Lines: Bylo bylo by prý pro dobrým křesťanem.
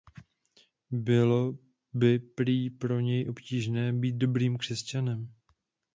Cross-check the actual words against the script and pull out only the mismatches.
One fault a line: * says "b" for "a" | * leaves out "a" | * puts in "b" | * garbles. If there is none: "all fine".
* leaves out "bylo"
* puts in "něj obtížné být"